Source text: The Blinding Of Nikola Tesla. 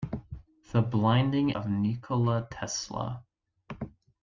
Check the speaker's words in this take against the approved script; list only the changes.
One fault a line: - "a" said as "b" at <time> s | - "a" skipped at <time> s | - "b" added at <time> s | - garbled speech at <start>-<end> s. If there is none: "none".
none